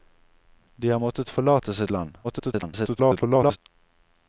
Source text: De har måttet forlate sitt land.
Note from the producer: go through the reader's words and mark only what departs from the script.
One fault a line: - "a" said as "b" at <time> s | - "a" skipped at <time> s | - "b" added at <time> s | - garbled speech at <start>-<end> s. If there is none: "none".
- garbled speech at 2.2-3.6 s